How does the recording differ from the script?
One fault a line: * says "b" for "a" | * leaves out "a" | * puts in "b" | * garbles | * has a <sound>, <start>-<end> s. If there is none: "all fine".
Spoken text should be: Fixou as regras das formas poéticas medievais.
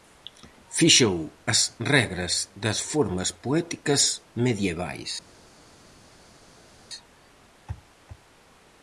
all fine